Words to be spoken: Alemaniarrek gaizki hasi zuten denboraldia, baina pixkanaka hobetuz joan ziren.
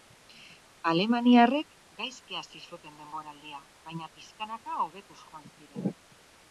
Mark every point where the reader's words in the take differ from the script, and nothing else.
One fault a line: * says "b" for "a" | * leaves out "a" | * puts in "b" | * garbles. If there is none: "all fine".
all fine